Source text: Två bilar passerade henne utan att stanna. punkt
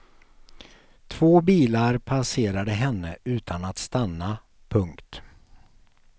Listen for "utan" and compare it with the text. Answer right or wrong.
right